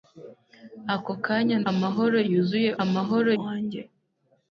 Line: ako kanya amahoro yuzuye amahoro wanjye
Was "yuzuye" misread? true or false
false